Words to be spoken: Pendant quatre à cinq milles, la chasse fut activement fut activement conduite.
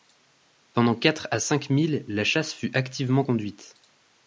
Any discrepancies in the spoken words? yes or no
yes